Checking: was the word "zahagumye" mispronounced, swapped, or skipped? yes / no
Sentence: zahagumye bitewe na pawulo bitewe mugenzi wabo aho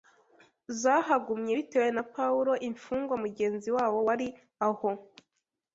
no